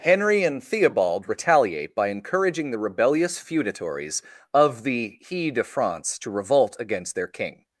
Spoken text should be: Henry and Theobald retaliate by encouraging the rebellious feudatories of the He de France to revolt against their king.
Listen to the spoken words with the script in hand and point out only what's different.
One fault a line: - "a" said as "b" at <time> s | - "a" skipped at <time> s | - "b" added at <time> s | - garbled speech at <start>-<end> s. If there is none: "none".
none